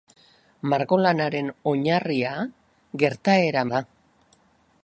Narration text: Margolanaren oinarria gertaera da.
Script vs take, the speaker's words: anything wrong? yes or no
no